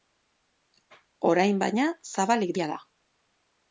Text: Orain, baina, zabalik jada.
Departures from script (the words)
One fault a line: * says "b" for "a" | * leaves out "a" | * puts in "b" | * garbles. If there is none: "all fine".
all fine